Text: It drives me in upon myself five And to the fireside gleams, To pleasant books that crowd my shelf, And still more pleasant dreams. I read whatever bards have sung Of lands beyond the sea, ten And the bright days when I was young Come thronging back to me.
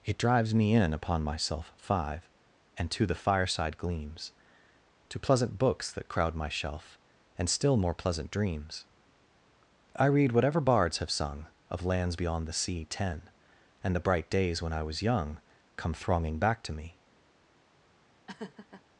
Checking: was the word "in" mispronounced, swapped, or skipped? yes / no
no